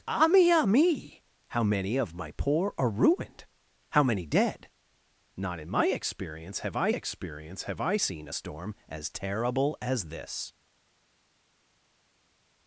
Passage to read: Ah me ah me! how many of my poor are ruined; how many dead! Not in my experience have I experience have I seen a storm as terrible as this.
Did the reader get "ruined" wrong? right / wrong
right